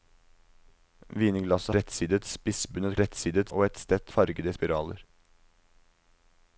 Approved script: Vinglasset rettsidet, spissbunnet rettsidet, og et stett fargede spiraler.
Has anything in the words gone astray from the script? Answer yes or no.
no